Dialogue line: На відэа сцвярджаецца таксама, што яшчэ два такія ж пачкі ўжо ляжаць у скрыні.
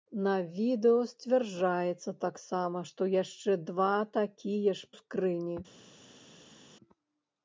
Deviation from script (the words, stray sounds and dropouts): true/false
true